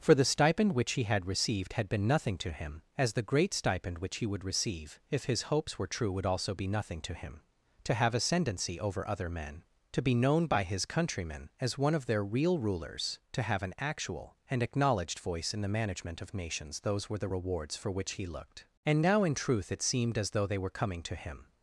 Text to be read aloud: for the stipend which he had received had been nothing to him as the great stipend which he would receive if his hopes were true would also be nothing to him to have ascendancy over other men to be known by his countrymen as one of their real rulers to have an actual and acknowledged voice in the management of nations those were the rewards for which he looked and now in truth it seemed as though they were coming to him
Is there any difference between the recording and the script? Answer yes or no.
no